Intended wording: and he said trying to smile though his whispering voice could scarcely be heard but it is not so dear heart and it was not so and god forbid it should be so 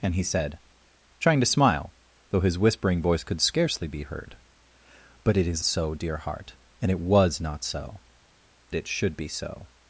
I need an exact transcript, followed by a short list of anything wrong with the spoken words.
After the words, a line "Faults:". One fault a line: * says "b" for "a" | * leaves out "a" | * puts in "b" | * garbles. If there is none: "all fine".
and he said trying to smile though his whispering voice could scarcely be heard but it is so dear heart and it was not so it should be so
Faults:
* leaves out "not"
* leaves out "and god forbid"